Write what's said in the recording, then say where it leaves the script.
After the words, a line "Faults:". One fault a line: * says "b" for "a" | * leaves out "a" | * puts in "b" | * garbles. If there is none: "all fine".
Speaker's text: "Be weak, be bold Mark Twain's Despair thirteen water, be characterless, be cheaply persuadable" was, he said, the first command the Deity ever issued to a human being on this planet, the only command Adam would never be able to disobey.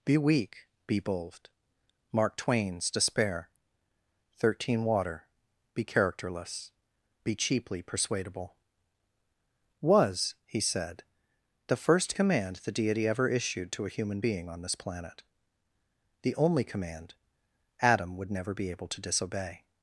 "Be weak, be bold Mark Twain's Despair thirteen water, be characterless, be cheaply persuadable" was, he said, the first command the Deity ever issued to a human being on this planet, the only command Adam would never be able to disobey.
Faults:
all fine